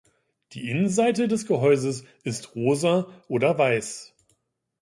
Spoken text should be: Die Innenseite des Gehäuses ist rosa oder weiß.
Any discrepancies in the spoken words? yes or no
no